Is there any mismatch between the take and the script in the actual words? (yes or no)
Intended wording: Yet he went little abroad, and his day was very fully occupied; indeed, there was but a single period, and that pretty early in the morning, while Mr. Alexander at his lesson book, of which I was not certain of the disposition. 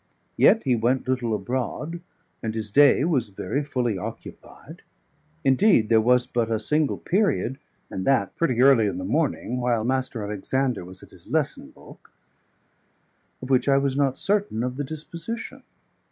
yes